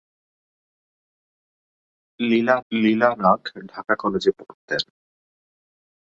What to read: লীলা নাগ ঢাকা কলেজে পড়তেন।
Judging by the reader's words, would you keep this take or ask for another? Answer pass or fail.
fail